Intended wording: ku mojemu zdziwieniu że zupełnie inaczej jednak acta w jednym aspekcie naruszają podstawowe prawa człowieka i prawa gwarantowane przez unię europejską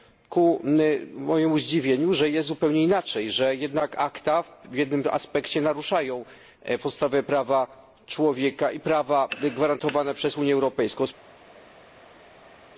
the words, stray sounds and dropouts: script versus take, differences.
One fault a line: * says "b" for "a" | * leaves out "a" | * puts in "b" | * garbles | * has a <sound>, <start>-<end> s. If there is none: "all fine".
* puts in "jest"
* puts in "że"